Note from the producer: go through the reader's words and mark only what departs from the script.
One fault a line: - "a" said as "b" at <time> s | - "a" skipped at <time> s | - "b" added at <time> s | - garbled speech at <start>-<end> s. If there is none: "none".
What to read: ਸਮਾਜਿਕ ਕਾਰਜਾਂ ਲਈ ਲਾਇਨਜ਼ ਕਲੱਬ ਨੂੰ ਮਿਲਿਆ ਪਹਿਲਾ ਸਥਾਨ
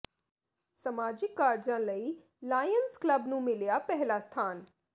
none